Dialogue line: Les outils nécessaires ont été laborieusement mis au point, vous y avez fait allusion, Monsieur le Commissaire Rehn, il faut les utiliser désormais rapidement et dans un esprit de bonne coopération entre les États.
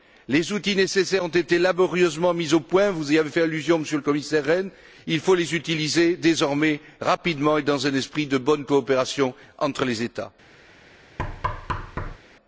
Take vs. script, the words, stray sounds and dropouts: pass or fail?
fail